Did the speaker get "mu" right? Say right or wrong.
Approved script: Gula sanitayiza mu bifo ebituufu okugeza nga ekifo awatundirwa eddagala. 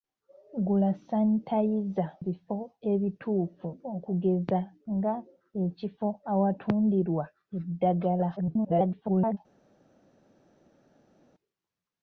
wrong